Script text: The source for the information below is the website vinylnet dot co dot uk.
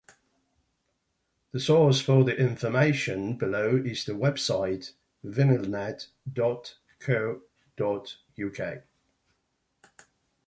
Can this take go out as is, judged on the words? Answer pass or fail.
pass